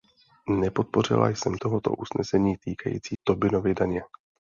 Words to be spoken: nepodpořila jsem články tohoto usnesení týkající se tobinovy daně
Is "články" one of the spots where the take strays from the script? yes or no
yes